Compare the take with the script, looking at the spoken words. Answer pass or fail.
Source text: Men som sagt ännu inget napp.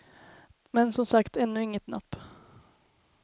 pass